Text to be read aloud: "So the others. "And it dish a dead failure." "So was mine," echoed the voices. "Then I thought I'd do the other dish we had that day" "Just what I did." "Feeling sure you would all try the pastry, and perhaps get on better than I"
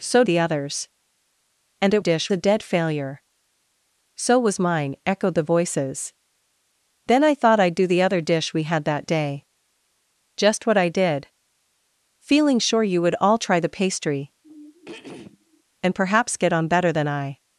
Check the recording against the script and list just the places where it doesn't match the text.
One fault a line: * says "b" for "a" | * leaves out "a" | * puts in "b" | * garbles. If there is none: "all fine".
all fine